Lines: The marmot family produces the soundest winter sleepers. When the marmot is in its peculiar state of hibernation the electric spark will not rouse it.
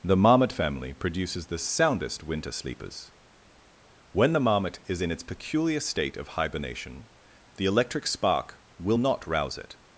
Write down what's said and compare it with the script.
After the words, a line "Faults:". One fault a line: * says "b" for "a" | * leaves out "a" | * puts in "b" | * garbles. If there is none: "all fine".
The marmot family produces the soundest winter sleepers. When the marmot is in its peculiar state of hibernation the electric spark will not rouse it.
Faults:
all fine